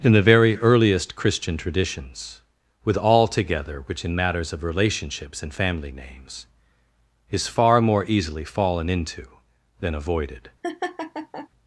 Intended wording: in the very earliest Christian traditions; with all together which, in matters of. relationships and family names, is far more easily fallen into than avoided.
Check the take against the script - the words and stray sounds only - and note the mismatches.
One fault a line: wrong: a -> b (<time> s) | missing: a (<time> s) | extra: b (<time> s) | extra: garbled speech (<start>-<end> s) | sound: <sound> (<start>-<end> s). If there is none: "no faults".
sound: laugh (10.6-11.5 s)